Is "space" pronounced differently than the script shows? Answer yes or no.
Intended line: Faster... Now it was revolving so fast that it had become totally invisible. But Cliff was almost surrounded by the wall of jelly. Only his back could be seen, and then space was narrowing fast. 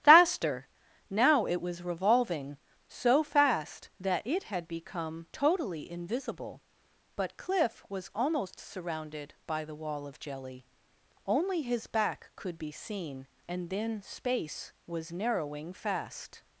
no